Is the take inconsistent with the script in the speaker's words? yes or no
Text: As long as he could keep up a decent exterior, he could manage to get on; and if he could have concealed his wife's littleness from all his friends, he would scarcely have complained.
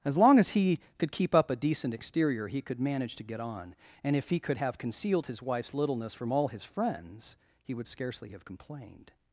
no